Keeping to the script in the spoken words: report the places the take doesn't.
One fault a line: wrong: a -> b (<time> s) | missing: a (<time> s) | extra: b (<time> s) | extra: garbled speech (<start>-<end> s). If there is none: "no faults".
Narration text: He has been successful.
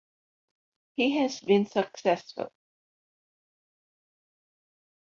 no faults